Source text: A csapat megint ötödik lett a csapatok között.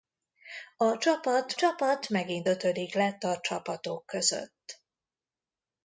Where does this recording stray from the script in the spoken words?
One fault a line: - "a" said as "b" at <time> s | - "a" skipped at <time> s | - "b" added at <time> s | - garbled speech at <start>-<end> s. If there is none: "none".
- "csapat" added at 1.5 s